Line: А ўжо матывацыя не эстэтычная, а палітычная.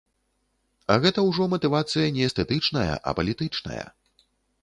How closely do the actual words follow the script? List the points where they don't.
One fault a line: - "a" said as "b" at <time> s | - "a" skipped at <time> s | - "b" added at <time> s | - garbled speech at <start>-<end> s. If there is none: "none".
- "гэта" added at 1.0 s